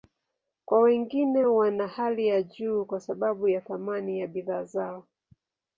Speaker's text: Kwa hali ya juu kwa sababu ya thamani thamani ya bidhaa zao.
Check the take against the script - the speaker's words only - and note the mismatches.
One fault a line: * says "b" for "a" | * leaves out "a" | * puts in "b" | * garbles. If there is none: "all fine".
* puts in "wengine wana"
* leaves out "thamani"